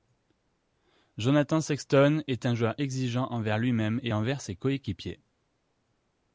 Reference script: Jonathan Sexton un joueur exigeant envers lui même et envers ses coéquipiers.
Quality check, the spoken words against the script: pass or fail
fail